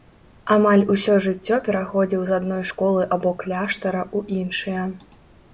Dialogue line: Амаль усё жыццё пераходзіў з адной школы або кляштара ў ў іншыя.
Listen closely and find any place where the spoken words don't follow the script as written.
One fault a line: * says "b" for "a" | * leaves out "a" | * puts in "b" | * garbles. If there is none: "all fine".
* leaves out "ў"